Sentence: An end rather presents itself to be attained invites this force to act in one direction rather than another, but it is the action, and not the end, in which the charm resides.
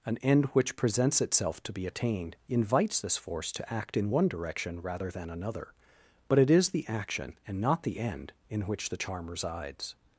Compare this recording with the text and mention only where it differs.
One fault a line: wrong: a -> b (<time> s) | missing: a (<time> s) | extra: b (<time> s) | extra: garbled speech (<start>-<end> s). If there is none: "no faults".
wrong: rather -> which (0.5 s)